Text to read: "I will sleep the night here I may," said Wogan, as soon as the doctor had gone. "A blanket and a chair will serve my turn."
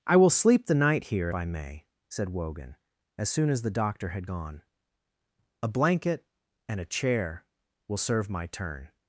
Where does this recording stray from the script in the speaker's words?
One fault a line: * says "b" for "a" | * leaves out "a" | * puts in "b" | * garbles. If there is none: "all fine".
all fine